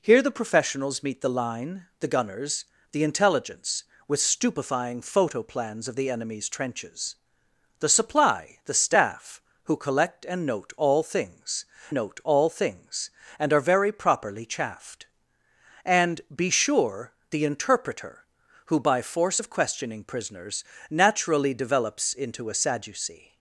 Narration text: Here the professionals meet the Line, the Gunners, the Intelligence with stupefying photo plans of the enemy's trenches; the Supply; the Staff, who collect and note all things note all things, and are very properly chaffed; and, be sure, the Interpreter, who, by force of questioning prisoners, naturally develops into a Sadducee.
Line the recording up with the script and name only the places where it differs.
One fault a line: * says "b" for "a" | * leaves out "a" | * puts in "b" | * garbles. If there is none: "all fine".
all fine